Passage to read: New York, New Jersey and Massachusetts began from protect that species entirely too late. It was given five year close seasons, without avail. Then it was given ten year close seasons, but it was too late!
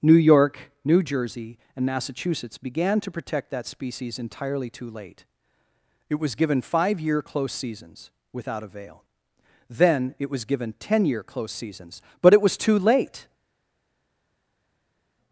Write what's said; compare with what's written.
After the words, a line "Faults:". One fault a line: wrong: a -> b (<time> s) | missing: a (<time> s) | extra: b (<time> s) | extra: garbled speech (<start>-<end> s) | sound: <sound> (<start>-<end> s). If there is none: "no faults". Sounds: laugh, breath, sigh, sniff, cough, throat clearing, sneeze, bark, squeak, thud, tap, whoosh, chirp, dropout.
New York, New Jersey and Massachusetts began to protect that species entirely too late. It was given five year close seasons, without avail. Then it was given ten year close seasons, but it was too late!
Faults:
wrong: from -> to (3.0 s)